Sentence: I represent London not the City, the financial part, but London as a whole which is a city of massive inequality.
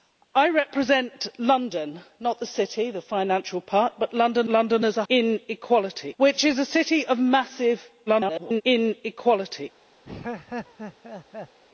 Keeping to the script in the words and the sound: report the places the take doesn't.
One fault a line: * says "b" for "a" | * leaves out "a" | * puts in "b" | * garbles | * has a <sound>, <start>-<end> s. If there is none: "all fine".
* puts in "London"
* says "inequality" for "whole"
* garbles
* has a laugh, 10.0-11.6 s